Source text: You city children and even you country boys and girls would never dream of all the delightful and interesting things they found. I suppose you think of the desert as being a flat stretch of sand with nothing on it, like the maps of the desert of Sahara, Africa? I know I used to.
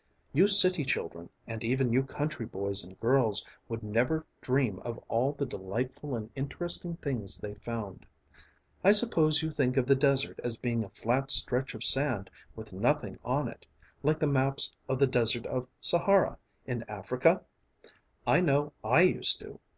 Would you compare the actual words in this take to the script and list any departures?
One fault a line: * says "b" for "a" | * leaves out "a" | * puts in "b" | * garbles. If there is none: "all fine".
* puts in "in"